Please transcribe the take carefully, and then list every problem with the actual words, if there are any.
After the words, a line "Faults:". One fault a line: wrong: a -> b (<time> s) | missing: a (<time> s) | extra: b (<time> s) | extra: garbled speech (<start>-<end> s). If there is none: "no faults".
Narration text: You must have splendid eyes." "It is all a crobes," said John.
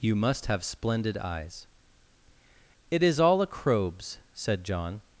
You must have splendid eyes." "It is all a crobes," said John.
Faults:
no faults